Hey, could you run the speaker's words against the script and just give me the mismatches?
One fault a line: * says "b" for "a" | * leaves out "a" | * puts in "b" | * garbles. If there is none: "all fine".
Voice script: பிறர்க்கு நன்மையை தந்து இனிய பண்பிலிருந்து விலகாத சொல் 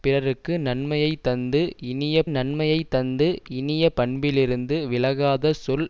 * puts in "நன்மையை தந்து இனிய"